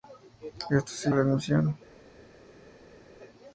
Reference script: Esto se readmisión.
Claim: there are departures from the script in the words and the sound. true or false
false